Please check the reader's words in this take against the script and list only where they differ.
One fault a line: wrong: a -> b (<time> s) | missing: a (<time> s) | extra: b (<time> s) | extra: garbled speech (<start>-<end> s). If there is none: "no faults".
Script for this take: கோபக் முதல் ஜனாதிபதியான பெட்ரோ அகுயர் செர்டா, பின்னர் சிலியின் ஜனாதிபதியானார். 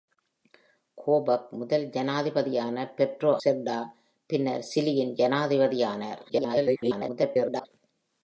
missing: அகுயர் (3.3 s)
extra: garbled speech (6.3-7.7 s)